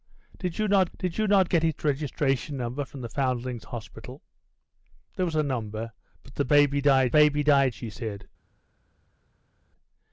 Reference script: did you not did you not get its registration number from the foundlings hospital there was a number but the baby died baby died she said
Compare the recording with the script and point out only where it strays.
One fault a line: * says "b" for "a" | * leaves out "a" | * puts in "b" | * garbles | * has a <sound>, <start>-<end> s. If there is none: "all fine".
all fine